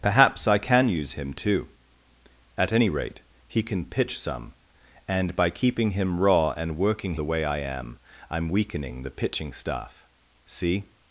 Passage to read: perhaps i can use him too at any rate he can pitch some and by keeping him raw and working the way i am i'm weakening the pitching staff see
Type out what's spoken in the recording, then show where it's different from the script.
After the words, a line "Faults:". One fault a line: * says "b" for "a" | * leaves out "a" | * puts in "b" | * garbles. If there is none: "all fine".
perhaps i can use him too at any rate he can pitch some and by keeping him raw and working the way i am i'm weakening the pitching staff see
Faults:
all fine